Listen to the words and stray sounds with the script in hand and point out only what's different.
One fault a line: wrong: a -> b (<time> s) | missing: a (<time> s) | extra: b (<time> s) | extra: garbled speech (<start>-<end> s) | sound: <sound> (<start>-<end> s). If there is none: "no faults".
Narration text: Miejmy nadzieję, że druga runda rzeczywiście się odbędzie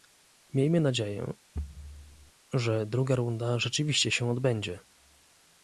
sound: thud (1.5-2.3 s)